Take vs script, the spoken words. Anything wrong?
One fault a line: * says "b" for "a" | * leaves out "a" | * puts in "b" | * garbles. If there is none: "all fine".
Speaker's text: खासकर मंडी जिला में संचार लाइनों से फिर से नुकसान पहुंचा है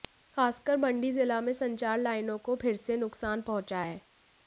* says "को" for "से"